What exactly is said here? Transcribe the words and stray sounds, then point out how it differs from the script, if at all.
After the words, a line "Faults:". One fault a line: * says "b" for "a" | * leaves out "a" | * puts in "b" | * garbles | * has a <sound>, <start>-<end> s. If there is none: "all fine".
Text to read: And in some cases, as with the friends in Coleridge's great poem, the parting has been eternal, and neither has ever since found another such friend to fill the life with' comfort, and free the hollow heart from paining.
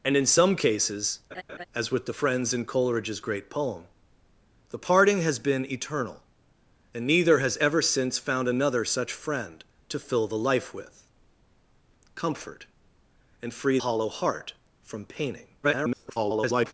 And in some cases, as with the friends in Coleridge's great poem, the parting has been eternal, and neither has ever since found another such friend to fill the life with' comfort, and free hollow heart from paining. [garbled]
Faults:
* has a laugh, 1.3-1.7 s
* leaves out "the"
* garbles